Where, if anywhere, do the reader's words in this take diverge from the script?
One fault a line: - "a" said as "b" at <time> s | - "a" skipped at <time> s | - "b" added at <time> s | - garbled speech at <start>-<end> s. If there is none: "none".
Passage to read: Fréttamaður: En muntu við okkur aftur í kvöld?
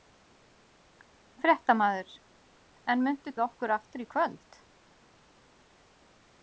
none